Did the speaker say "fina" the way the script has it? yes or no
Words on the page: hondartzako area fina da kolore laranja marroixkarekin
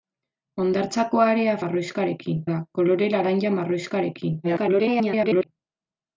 no